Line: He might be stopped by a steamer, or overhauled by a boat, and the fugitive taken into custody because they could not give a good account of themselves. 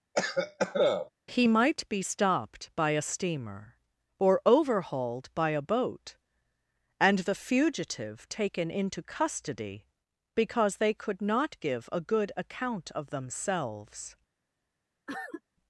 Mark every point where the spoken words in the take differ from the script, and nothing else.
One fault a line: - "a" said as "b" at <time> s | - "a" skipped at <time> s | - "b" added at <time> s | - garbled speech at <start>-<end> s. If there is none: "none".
none